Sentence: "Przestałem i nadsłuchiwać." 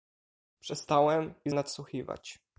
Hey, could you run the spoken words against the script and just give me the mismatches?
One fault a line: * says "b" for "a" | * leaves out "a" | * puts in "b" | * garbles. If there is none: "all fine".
all fine